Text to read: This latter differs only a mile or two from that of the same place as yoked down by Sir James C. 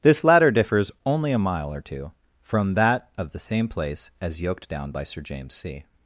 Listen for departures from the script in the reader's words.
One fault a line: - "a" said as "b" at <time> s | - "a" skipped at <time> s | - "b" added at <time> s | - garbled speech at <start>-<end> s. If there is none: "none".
none